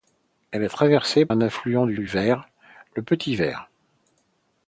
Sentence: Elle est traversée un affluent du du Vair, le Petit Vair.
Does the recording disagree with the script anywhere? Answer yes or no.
no